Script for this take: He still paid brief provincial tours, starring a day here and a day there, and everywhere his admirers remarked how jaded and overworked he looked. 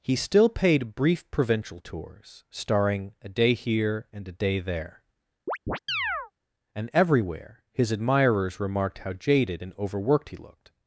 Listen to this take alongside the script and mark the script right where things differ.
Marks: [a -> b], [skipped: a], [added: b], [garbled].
He still paid brief provincial tours, starring a day here and a day there, and everywhere his admirers remarked how jaded and overworked he looked.